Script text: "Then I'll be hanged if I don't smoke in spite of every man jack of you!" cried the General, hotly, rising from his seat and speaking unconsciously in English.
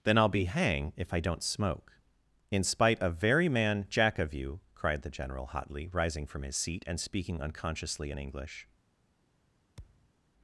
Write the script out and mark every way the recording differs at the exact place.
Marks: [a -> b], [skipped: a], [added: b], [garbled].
"Then I'll be [hanged -> hang] if I don't smoke in spite of [every -> very] man jack of you!" cried the General, hotly, rising from his seat and speaking unconsciously in English.